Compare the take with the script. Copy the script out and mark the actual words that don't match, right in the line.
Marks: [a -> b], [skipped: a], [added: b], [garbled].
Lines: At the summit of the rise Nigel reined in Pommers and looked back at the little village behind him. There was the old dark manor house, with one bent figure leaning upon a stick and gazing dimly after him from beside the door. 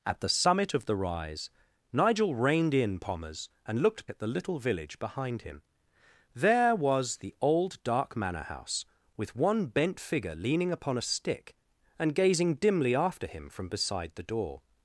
At the summit of the rise Nigel reined in Pommers and looked [skipped: back] at the little village behind him. There was the old dark manor house, with one bent figure leaning upon a stick and gazing dimly after him from beside the door.